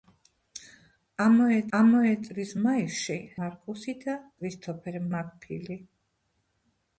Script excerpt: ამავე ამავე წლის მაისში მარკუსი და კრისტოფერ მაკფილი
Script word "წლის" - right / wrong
right